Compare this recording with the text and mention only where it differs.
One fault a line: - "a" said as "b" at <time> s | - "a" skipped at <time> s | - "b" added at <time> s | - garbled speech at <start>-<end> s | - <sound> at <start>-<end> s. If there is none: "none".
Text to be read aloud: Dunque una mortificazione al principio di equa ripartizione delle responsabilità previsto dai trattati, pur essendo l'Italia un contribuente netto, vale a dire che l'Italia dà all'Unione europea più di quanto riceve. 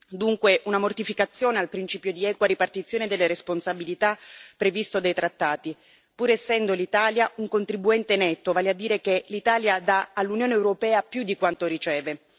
none